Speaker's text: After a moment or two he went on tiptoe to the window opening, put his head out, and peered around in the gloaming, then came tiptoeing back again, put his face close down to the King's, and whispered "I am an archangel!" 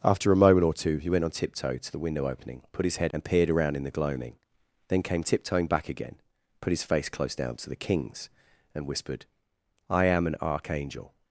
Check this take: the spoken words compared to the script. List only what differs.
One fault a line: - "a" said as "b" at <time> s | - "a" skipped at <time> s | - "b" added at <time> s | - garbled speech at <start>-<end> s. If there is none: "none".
- "out" skipped at 3.1 s